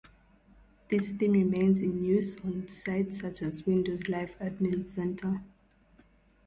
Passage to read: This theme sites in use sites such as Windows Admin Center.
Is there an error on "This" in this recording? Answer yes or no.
no